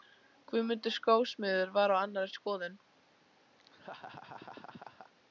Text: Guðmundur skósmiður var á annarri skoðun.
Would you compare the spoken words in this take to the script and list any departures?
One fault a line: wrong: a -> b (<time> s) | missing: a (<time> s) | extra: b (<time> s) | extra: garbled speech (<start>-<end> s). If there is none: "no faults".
no faults